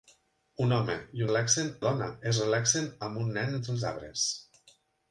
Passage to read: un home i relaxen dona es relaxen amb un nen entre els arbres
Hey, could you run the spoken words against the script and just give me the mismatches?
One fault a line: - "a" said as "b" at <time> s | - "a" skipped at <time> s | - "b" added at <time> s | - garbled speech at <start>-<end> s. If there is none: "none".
none